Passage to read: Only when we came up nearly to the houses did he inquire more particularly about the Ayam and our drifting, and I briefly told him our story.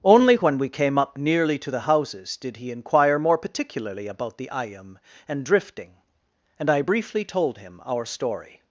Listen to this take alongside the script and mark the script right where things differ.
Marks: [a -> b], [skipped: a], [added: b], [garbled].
Only when we came up nearly to the houses did he inquire more particularly about the Ayam and [skipped: our] drifting, and I briefly told him our story.